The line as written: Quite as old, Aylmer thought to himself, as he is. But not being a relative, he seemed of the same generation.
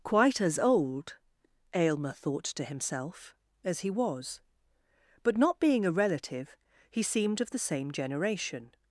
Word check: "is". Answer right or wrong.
wrong